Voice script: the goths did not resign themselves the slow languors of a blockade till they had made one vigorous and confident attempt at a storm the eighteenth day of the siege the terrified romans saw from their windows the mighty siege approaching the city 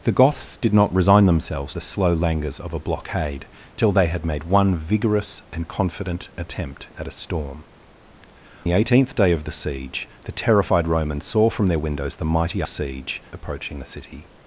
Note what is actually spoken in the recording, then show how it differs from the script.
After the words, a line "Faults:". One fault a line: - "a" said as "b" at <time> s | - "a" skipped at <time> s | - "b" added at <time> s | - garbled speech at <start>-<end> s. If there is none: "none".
the goths did not resign themselves the slow languors of a blockade till they had made one vigorous and confident attempt at a storm the eighteenth day of the siege the terrified romans saw from their windows the mighty siege approaching the city
Faults:
none